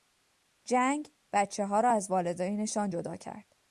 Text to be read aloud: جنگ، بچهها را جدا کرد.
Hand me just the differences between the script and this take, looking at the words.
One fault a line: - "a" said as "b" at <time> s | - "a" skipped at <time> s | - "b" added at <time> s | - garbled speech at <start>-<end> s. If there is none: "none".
- "از والدینشان" added at 1.9 s